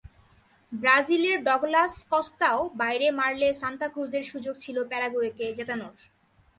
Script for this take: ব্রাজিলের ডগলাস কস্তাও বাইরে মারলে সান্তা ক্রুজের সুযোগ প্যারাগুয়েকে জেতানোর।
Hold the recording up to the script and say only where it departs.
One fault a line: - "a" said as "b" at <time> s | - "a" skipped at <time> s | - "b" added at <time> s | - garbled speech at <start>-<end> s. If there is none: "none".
- "ছিল" added at 4.6 s